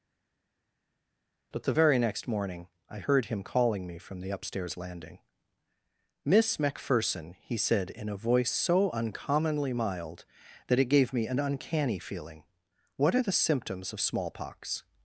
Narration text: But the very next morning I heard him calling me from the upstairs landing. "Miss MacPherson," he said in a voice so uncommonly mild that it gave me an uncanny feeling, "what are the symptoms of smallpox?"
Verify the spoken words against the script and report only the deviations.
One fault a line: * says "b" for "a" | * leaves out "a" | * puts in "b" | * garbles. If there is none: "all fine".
all fine